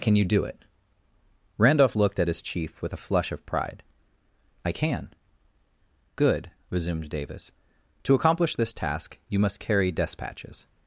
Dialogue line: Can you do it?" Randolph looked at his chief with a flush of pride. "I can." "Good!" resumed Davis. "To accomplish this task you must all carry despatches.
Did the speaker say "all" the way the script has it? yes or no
no